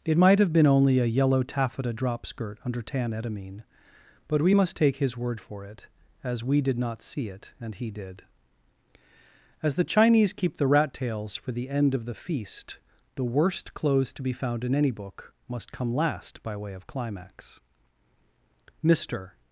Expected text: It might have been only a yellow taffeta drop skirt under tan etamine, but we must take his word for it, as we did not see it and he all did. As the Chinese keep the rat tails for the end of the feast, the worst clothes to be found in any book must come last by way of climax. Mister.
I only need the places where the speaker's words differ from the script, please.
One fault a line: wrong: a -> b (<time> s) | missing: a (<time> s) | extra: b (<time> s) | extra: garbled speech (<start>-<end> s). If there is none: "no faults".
missing: all (7.9 s)